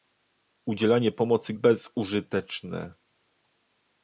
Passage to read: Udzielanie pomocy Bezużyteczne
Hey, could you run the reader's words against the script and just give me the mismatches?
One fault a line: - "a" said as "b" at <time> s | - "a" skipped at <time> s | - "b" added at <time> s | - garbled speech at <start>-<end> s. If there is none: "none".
none